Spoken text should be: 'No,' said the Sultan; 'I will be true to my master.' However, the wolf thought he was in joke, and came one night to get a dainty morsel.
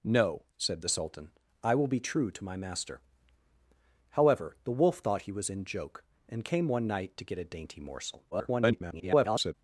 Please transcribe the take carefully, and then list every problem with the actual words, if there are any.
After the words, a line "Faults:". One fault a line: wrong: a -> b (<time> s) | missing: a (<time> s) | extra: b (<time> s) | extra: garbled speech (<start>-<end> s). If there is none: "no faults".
'No,' said the Sultan; 'I will be true to my master.' However, the wolf thought he was in joke, and came one night to get a dainty morsel. [garbled]
Faults:
extra: garbled speech (8.3-9.5 s)